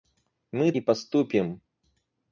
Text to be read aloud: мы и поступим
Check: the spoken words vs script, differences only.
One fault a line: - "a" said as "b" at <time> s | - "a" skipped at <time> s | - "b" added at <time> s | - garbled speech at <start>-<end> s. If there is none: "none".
none